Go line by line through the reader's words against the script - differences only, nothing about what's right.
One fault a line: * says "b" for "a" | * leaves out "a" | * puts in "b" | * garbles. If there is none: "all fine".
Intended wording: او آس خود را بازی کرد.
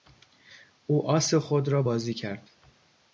all fine